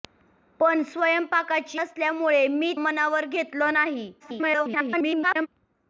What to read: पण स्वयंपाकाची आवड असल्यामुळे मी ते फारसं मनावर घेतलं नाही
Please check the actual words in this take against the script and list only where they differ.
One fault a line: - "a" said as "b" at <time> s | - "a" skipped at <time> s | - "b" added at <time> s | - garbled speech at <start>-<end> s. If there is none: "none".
- "आवड" skipped at 1.8 s
- "ते फारसं" skipped at 2.7 s
- garbled speech at 4.2-5.5 s